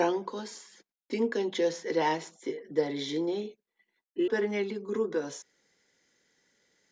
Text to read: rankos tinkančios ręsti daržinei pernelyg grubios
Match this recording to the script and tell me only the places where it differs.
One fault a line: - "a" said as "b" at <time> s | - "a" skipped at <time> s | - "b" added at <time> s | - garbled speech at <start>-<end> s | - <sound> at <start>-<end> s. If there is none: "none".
none